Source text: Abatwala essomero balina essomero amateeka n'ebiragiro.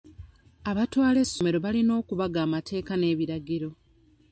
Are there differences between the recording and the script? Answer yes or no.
yes